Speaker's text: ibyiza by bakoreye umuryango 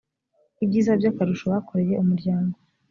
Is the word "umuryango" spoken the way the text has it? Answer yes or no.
yes